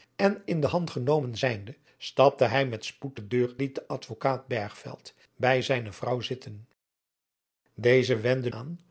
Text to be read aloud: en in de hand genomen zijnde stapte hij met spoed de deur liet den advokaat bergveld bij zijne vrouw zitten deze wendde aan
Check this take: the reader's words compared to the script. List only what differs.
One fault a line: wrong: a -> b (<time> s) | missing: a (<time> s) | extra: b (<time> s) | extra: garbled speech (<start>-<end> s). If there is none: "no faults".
no faults